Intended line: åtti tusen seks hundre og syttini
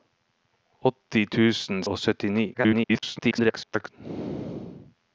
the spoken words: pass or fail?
fail